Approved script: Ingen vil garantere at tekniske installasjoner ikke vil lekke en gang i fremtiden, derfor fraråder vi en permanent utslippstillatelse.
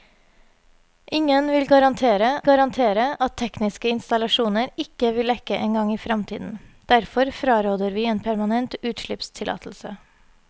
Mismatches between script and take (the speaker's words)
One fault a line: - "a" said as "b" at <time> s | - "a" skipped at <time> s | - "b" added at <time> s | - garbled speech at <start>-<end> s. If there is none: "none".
- "garantere" added at 2.5 s